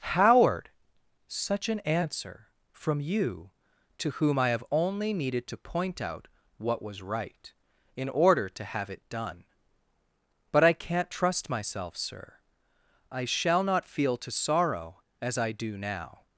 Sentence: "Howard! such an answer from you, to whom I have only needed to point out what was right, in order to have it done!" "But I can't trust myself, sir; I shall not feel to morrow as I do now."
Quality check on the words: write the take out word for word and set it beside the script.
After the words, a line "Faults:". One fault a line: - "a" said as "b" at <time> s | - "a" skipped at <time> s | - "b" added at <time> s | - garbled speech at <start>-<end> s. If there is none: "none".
"Howard! such an answer from you, to whom I have only needed to point out what was right, in order to have it done!" "But I can't trust myself, sir; I shall not feel to sorrow as I do now."
Faults:
- "morrow" said as "sorrow" at 14.3 s